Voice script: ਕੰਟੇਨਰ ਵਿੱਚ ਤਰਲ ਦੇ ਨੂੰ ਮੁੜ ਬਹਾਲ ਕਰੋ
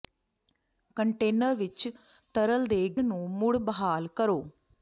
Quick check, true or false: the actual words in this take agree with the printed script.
true